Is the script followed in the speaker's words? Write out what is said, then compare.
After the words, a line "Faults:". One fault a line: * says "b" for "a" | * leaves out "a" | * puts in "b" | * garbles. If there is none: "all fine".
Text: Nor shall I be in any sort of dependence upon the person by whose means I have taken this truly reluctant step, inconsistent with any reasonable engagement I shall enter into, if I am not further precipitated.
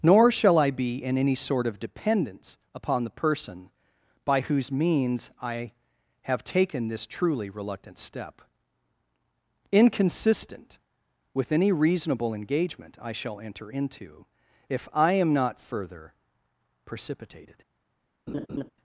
Nor shall I be in any sort of dependence upon the person by whose means I have taken this truly reluctant step, inconsistent with any reasonable engagement I shall enter into, if I am not further precipitated.
Faults:
all fine